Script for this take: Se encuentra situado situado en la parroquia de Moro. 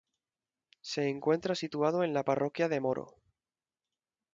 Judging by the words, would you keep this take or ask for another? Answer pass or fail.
fail